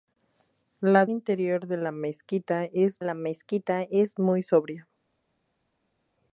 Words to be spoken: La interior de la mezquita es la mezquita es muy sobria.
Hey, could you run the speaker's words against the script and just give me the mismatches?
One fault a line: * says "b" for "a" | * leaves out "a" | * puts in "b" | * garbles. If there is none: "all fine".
all fine